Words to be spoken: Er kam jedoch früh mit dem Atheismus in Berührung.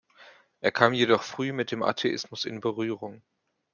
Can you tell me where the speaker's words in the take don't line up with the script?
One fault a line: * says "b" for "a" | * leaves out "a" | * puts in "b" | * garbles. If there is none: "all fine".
all fine